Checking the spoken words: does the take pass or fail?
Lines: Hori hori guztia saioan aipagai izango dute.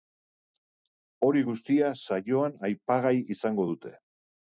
fail